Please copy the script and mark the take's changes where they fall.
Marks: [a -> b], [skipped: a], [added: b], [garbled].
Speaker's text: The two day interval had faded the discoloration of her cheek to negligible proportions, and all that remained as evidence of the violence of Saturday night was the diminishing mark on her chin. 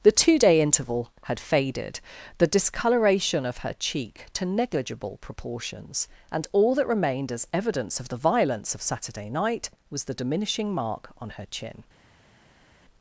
The two day interval had faded the discoloration of her cheek to negligible proportions, and all that remained as evidence of the violence of Saturday night was the diminishing mark on her chin.